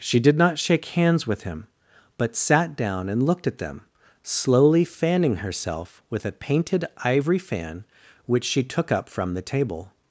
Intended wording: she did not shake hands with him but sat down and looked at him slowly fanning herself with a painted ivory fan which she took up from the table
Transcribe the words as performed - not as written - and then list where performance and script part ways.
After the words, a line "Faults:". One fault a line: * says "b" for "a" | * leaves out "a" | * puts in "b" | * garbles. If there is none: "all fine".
she did not shake hands with him but sat down and looked at them slowly fanning herself with a painted ivory fan which she took up from the table
Faults:
* says "them" for "him"